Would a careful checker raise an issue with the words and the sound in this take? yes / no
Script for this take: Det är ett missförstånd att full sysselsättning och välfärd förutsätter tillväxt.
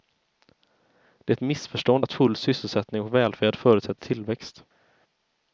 no